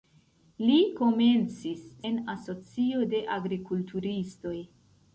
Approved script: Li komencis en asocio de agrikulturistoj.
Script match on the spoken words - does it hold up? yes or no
yes